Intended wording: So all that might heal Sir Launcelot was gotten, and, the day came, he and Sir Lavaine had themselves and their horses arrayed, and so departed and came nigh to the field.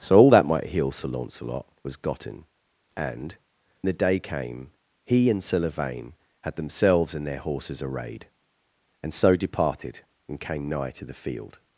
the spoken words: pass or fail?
pass